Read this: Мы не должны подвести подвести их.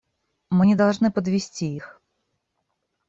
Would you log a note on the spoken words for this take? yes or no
yes